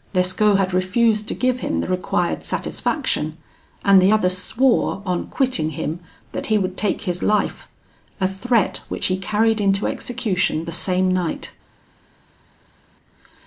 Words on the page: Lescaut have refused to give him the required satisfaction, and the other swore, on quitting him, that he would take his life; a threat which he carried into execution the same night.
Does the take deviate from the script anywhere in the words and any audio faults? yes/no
yes